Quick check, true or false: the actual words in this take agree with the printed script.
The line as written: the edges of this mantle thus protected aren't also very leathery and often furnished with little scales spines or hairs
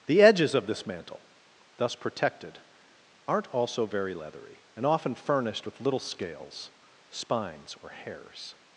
true